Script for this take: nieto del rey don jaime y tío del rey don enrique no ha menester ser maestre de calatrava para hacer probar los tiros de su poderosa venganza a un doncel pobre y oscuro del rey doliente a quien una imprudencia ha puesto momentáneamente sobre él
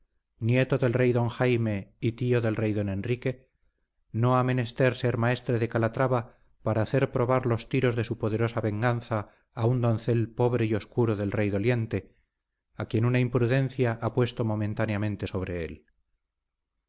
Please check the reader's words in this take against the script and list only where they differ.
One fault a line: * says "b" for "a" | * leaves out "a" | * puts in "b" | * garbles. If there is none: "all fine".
all fine